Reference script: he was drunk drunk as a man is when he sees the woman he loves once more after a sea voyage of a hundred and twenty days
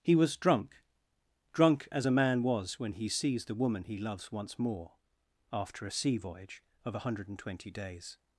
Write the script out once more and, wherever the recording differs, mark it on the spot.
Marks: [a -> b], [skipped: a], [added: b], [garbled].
he was drunk drunk as a man [is -> was] when he sees the woman he loves once more after a sea voyage of a hundred and twenty days